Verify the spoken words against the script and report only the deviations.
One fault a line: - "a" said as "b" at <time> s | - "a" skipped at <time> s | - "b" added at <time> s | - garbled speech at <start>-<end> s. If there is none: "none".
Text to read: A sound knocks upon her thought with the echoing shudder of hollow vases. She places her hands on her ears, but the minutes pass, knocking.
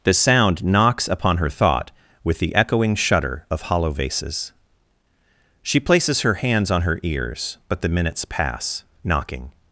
- "A" said as "The" at 0.0 s